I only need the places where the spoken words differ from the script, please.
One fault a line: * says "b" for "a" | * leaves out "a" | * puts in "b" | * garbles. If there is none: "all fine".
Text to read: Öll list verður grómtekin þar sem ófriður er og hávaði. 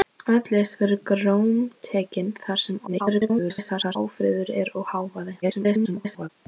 * garbles
* garbles